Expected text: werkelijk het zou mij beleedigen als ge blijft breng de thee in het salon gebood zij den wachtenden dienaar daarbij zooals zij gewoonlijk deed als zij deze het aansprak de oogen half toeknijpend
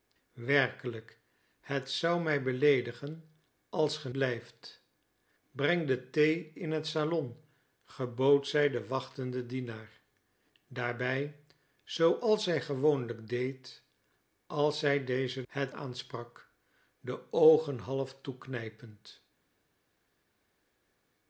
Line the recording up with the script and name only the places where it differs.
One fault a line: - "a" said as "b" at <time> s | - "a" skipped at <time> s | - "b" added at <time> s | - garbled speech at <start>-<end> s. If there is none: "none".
none